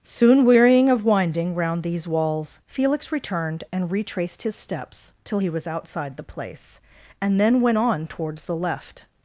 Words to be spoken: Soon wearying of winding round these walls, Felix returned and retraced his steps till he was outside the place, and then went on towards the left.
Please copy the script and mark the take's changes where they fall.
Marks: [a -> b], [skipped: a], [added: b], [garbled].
Soon wearying of winding round these walls, Felix returned and retraced his steps till he was outside the place, and then went on towards the left.